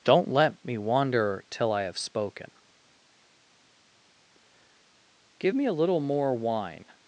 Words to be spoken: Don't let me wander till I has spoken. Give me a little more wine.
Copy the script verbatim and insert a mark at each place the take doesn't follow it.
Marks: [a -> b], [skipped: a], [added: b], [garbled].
Don't let me wander till I [has -> have] spoken. Give me a little more wine.